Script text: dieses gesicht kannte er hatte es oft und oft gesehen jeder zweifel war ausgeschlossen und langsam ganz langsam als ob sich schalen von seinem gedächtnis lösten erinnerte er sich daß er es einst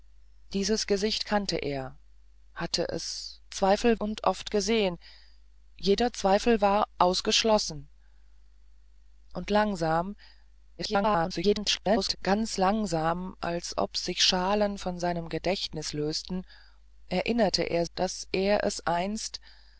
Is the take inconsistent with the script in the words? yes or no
yes